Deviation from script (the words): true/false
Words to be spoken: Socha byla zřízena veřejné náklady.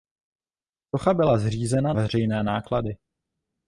false